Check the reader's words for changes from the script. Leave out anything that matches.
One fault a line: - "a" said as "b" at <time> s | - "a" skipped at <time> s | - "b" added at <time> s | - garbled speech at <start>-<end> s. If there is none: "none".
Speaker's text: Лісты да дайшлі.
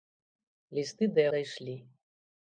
none